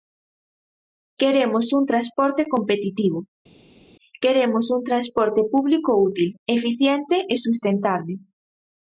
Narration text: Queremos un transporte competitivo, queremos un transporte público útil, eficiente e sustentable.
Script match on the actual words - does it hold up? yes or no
yes